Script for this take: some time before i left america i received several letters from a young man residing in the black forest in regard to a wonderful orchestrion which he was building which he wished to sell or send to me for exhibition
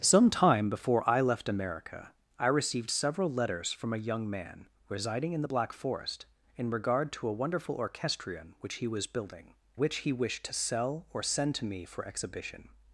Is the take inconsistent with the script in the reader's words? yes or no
no